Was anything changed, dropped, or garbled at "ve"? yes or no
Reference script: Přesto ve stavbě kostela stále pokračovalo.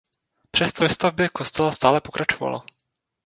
no